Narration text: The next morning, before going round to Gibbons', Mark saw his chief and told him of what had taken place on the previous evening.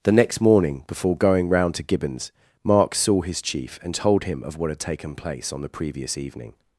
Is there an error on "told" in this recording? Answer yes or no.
no